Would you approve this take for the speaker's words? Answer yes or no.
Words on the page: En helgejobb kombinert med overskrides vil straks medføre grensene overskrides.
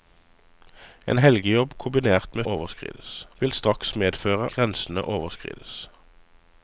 yes